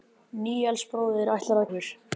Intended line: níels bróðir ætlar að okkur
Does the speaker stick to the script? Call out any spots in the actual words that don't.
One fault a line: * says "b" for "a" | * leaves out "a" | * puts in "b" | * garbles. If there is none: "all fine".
all fine